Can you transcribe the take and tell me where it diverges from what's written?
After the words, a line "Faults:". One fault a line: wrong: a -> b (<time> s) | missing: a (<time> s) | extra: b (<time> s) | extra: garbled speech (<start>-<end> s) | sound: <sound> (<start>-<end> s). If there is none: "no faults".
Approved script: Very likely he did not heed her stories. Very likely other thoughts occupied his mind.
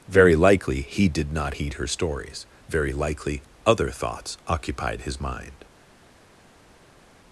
Very likely he did not heed her stories. Very likely other thoughts occupied his mind.
Faults:
no faults